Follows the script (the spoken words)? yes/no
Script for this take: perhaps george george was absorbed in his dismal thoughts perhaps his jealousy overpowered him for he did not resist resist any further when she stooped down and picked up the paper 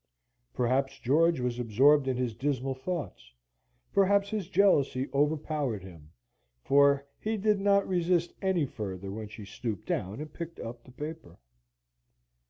no